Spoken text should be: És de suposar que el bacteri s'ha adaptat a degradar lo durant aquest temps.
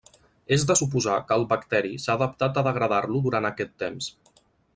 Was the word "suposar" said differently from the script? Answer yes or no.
no